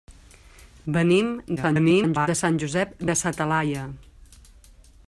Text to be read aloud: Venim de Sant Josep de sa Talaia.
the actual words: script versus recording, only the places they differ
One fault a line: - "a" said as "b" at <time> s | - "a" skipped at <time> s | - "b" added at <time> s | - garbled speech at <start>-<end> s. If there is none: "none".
- garbled speech at 1.6-2.3 s